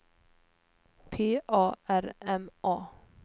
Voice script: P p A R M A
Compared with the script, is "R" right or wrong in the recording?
right